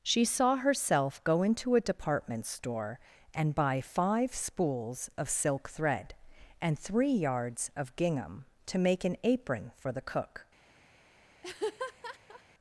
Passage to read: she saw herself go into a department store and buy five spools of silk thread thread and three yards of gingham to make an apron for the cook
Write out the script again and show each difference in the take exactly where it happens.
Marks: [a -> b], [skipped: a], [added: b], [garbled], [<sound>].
she saw herself go into a department store and buy five spools of silk thread [skipped: thread] and three yards of gingham to make an apron for the cook [laugh]